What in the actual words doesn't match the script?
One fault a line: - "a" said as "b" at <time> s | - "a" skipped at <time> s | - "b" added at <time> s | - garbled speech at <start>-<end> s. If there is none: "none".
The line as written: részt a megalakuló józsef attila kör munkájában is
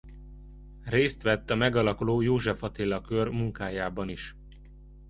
- "vett" added at 1.2 s